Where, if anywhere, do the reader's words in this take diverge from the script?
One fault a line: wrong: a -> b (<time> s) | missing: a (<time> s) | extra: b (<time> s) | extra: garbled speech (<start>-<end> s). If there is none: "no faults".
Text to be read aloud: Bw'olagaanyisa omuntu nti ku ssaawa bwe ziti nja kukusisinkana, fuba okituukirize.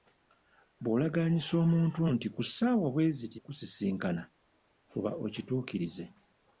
missing: nja (3.4 s)